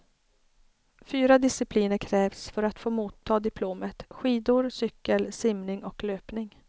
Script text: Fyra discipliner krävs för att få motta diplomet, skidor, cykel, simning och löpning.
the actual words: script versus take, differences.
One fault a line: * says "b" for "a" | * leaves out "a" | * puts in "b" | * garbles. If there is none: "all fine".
all fine